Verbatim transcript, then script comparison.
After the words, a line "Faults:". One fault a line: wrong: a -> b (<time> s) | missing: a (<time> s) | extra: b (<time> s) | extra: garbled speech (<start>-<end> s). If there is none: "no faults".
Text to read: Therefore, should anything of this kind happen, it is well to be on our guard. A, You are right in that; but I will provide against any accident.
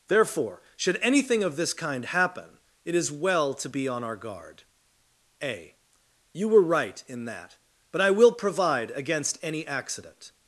Therefore, should anything of this kind happen, it is well to be on our guard. A, You were right in that; but I will provide against any accident.
Faults:
wrong: are -> were (6.5 s)